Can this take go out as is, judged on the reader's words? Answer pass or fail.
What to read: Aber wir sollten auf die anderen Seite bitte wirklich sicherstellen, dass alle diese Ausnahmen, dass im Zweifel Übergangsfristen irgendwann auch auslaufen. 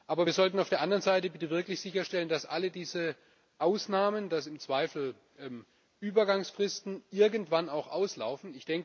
fail